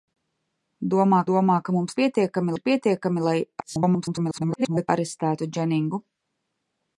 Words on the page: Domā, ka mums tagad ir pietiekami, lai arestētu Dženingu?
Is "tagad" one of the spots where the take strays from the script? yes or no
yes